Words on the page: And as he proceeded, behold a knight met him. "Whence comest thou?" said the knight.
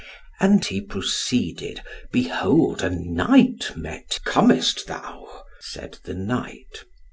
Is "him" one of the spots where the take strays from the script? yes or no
yes